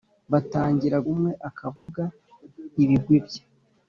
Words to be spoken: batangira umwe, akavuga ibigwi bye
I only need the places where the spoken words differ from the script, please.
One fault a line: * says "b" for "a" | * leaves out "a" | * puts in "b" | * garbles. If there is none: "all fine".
all fine